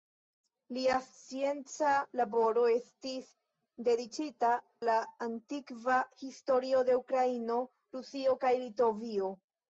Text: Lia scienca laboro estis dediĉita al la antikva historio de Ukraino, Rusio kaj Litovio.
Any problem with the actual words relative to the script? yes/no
yes